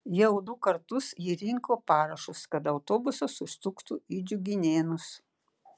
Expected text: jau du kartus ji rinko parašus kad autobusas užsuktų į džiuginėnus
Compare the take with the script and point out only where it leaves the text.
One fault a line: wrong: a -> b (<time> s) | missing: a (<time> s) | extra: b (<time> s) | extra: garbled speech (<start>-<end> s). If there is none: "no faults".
no faults